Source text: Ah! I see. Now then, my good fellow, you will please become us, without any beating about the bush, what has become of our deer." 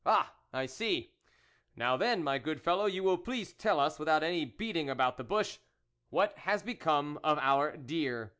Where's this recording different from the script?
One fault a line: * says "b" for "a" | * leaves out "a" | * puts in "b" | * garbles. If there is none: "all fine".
* says "tell" for "become"